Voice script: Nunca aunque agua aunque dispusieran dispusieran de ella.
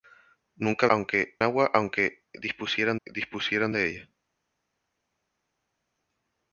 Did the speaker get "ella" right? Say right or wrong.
right